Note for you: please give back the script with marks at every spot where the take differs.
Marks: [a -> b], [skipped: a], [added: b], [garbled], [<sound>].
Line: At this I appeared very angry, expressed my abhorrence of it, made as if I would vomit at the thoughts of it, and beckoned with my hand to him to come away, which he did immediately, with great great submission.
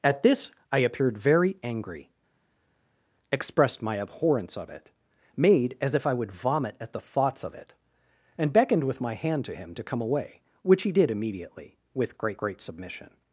At this I appeared very angry, expressed my abhorrence of it, made as if I would vomit at the thoughts of it, and beckoned with my hand to him to come away, which he did immediately, with great great submission.